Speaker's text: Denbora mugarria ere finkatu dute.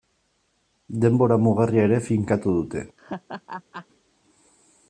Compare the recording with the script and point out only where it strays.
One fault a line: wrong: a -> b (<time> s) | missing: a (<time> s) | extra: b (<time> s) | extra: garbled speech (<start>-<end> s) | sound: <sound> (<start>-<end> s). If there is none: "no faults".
sound: laugh (3.0-3.9 s)